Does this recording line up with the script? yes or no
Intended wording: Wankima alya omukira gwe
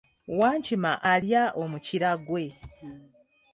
yes